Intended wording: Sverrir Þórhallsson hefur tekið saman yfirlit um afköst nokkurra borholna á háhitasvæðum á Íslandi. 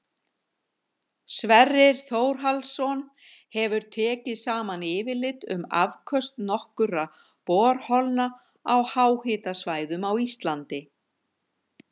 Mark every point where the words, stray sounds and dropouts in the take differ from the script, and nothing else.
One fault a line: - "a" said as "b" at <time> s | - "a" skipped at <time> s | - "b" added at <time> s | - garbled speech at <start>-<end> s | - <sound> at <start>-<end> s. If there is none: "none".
none